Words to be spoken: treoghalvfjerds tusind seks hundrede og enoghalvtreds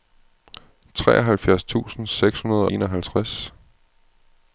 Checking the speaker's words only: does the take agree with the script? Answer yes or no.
no